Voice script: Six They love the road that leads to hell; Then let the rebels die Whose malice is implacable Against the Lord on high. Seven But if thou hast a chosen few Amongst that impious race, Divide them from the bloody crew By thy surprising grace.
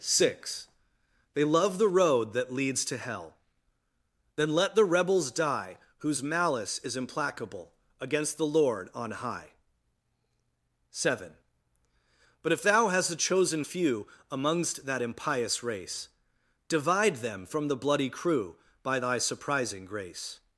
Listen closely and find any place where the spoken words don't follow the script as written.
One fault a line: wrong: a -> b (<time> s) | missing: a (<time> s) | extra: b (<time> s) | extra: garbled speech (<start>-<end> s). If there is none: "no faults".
no faults